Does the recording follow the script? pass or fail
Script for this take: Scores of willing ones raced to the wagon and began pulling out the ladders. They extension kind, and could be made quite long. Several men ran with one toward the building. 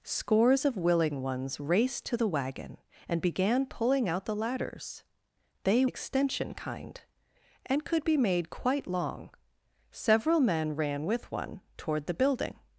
pass